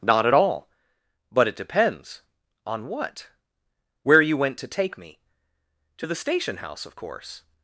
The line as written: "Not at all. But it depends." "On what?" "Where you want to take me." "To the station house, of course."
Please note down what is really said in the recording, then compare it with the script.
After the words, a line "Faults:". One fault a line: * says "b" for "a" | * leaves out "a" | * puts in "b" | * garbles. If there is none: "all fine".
"Not at all. But it depends." "On what?" "Where you went to take me." "To the station house, of course."
Faults:
* says "went" for "want"